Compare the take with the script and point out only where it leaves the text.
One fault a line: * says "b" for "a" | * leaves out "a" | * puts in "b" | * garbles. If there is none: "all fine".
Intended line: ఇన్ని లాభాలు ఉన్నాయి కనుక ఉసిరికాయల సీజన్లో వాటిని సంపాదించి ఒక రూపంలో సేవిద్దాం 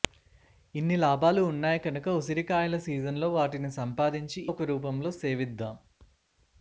all fine